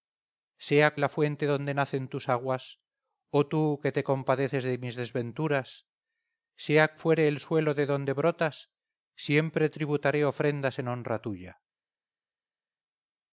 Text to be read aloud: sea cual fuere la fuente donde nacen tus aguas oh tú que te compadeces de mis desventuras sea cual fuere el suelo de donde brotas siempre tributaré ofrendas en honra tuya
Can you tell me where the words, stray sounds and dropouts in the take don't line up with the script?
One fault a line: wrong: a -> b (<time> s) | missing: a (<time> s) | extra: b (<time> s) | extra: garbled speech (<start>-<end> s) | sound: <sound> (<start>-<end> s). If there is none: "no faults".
missing: cual fuere (0.9 s)
missing: cual (6.9 s)